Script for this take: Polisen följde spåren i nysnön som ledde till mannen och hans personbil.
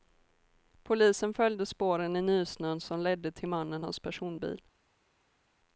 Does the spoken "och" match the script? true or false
false